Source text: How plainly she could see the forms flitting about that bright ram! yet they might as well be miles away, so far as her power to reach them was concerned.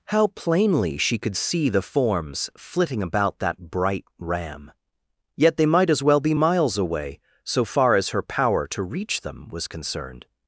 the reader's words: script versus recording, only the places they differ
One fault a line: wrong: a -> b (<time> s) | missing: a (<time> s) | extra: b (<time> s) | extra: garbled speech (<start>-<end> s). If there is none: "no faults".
no faults